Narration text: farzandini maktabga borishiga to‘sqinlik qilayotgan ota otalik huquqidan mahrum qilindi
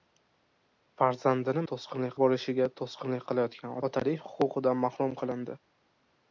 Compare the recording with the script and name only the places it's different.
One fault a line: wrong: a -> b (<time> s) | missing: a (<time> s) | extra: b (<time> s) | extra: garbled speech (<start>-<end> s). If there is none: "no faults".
wrong: maktabga -> to‘sqinlik (1.7 s)
missing: ota (3.8 s)